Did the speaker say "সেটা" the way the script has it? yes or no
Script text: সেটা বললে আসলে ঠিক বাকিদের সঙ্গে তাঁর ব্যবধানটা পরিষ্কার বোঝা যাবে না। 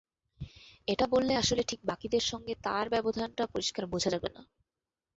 no